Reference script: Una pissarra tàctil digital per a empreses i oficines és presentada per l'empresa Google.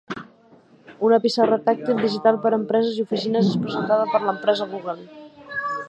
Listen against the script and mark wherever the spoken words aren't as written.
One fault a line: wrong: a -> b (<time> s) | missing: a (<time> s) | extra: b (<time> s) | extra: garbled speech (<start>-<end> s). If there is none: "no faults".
no faults